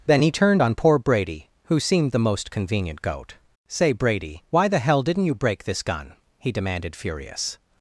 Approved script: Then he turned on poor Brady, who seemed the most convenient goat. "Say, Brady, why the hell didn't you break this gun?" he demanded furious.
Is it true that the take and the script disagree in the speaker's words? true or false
false